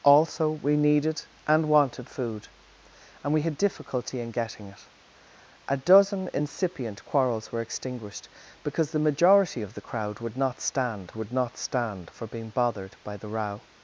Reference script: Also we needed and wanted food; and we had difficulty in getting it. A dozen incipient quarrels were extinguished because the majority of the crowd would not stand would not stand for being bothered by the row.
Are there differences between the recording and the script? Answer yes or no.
no